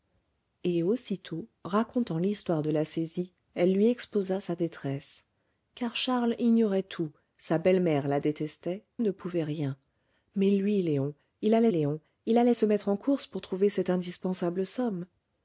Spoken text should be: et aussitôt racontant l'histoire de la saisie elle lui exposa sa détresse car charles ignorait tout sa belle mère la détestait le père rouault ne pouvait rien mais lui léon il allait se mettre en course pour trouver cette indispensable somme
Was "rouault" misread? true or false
true